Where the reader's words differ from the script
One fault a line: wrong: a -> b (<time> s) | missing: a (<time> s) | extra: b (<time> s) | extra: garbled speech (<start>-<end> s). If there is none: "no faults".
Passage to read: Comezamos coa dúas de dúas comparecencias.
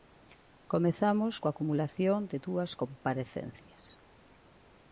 wrong: dúas -> acumulación (1.5 s)